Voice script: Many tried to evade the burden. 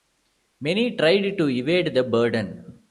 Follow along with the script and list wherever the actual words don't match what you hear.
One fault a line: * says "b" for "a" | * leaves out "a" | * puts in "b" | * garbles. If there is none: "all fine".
all fine